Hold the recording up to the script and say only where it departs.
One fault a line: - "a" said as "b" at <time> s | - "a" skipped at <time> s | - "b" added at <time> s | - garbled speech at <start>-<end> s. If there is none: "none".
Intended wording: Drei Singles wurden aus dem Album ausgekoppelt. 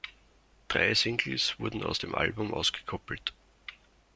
none